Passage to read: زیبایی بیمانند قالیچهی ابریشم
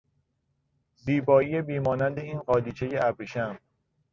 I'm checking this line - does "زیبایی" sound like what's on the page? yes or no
yes